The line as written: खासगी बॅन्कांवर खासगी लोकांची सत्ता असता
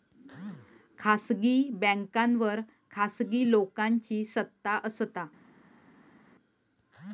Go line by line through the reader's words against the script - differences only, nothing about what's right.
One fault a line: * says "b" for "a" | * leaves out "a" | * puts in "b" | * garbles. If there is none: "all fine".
all fine